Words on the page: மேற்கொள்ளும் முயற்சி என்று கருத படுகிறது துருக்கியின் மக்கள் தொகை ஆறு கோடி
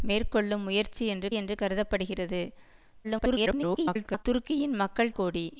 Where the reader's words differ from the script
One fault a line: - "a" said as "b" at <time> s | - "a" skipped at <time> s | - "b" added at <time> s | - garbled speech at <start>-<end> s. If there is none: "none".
- "என்று" added at 1.3 s
- garbled speech at 3.0-4.2 s
- "தொகை ஆறு" skipped at 5.2 s